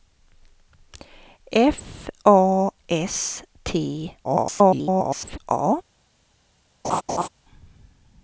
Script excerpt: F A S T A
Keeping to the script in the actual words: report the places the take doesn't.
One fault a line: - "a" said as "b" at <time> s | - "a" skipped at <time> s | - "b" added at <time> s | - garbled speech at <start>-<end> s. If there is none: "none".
- garbled speech at 4.2-5.4 s